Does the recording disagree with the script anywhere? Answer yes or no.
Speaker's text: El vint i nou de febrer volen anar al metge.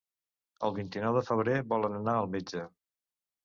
no